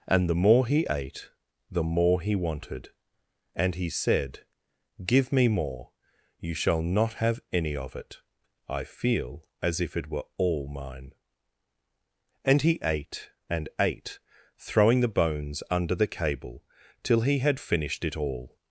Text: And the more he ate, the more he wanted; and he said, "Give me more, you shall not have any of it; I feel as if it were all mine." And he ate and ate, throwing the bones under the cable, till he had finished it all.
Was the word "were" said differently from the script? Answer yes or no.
no